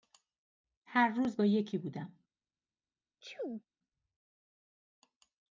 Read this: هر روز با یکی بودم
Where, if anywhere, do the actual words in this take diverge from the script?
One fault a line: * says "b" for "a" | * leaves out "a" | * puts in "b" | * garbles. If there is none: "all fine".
all fine